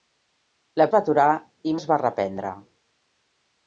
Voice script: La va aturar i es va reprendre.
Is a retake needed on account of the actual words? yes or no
no